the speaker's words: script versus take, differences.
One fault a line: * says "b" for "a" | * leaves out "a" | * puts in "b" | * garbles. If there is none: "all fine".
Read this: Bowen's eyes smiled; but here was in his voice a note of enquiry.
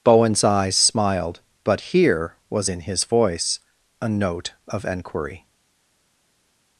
all fine